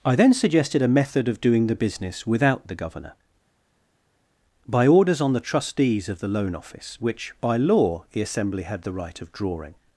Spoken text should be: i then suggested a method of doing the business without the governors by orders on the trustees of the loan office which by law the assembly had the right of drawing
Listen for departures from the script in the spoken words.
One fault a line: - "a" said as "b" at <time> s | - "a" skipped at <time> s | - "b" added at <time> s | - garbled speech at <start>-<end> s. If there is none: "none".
- "governors" said as "governor" at 2.8 s